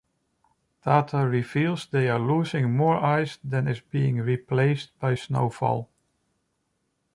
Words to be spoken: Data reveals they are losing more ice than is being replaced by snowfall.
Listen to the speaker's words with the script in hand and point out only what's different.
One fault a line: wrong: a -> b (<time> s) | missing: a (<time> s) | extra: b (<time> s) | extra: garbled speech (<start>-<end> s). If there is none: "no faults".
no faults